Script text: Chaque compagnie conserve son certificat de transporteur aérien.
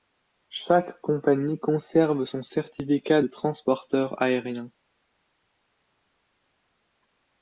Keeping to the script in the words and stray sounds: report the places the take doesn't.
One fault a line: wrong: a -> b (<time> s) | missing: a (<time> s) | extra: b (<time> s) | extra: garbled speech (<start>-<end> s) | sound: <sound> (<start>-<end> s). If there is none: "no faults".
no faults